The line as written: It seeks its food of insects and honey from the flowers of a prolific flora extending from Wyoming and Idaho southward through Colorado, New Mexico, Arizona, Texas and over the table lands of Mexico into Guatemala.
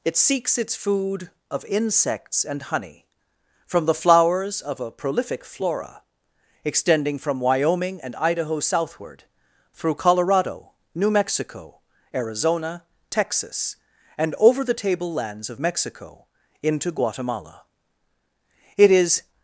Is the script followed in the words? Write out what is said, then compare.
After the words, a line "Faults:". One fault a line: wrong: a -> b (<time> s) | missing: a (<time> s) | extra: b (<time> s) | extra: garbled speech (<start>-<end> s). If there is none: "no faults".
It seeks its food of insects and honey from the flowers of a prolific flora extending from Wyoming and Idaho southward through Colorado, New Mexico, Arizona, Texas and over the table lands of Mexico into Guatemala. It is
Faults:
extra: It is (18.8 s)